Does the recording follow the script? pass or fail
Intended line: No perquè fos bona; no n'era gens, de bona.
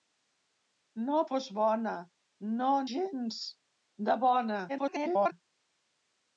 fail